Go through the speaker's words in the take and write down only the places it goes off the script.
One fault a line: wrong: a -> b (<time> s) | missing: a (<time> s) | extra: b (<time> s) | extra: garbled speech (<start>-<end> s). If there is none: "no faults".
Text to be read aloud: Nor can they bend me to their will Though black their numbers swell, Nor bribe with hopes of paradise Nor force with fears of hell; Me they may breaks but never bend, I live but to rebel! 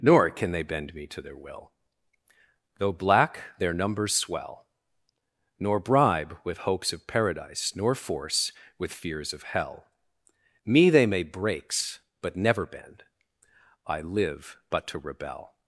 no faults